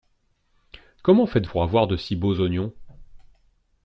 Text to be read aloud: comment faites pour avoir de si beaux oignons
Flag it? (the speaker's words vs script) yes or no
no